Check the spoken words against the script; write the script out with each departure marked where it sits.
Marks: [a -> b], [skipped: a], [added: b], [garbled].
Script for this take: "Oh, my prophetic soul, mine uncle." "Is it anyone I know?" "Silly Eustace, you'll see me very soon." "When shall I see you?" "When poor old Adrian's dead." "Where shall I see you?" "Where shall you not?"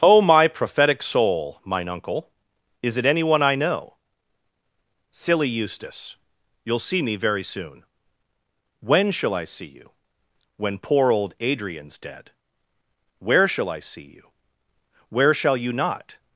"Oh, my prophetic soul, mine uncle." "Is it anyone I know?" "Silly Eustace, you'll see me very soon." "When shall I see you?" "When poor old Adrian's dead." "Where shall I see you?" "Where shall you not?"